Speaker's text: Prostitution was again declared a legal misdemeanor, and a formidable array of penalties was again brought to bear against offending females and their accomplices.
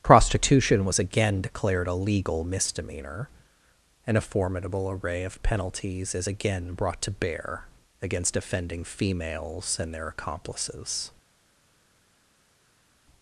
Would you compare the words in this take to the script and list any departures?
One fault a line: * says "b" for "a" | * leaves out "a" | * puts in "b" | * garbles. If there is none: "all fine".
* says "is" for "was"